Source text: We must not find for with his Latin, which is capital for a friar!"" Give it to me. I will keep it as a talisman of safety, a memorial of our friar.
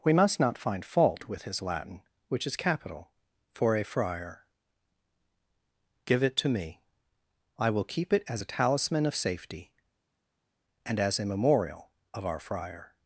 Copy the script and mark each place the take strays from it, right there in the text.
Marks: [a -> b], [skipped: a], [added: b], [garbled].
We must not find [for -> fault] with his Latin, which is capital for a friar!"" Give it to me. I will keep it as a talisman of safety, [added: and as] a memorial of our friar.